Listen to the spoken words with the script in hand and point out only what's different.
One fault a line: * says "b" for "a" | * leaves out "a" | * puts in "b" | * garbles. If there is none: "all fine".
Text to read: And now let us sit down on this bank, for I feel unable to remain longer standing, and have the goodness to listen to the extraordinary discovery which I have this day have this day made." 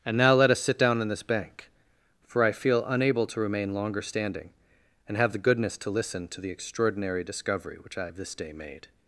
* leaves out "have this day"